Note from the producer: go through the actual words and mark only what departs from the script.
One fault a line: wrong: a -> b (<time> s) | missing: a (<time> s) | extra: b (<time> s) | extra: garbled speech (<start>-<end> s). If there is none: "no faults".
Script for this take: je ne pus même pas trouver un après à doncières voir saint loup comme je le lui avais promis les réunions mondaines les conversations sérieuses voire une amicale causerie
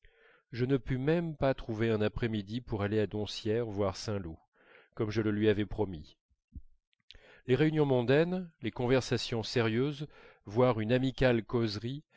extra: midi pour aller (2.3 s)